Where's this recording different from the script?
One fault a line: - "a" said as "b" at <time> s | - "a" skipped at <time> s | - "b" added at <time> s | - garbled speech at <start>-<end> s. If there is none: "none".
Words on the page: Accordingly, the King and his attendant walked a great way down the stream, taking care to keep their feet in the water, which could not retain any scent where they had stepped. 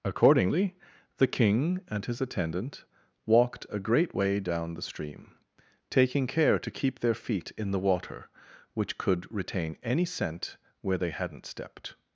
- "not" skipped at 9.3 s
- "had" said as "hadn't" at 11.1 s